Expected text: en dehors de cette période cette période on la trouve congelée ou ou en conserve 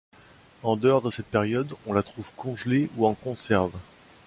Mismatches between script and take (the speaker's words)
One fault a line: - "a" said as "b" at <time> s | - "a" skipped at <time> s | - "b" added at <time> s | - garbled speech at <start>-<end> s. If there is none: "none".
- "cette période" skipped at 1.7 s
- "ou" skipped at 3.1 s